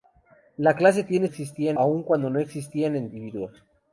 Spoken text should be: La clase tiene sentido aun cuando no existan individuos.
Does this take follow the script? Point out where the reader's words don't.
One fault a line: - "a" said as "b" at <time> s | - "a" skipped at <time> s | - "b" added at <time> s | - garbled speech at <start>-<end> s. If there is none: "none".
- "sentido" said as "existan" at 1.2 s